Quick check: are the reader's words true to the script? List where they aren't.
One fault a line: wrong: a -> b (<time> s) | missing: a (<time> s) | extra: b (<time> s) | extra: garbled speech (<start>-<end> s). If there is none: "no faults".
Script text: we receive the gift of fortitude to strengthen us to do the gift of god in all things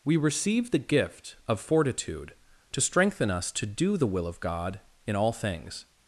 wrong: gift -> will (4.1 s)